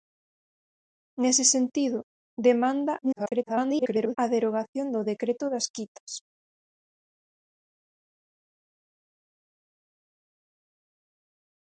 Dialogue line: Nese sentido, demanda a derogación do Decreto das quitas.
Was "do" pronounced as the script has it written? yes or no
yes